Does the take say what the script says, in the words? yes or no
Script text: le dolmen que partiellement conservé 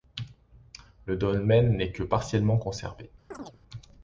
no